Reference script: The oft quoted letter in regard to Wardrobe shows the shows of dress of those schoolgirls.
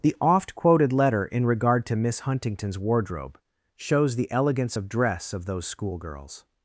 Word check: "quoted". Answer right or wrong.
right